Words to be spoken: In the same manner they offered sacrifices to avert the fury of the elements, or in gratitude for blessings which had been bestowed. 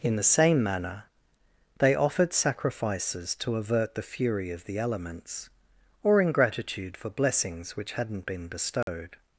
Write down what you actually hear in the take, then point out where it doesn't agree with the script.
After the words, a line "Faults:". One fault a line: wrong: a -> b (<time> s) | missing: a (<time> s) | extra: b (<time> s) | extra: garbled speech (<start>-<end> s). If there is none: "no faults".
In the same manner they offered sacrifices to avert the fury of the elements, or in gratitude for blessings which hadn't been bestowed.
Faults:
wrong: had -> hadn't (7.9 s)